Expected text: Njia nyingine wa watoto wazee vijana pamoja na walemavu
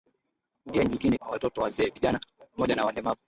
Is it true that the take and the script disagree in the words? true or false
false